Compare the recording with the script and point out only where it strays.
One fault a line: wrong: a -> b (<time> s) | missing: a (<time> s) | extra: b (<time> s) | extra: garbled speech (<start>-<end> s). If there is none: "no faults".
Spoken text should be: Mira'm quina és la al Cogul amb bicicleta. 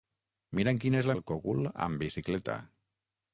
no faults